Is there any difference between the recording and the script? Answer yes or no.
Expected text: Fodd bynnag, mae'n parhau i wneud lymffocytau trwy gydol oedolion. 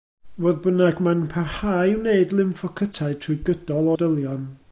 no